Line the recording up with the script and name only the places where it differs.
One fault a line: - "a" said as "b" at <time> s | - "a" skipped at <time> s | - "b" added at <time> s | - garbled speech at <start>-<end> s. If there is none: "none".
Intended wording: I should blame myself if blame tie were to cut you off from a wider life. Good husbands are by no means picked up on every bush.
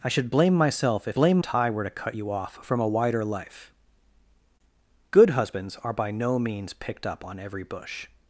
none